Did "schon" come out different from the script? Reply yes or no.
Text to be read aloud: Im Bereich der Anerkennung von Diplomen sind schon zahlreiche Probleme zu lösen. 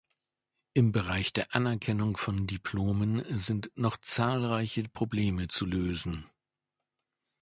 yes